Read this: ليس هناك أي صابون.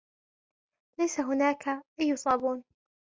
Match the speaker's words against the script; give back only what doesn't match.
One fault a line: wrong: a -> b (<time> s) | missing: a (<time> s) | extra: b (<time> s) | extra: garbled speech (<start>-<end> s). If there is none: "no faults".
no faults